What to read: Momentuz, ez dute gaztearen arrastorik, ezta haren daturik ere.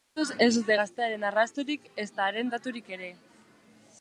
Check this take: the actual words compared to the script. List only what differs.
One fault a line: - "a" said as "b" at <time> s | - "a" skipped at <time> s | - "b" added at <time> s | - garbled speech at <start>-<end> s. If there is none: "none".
none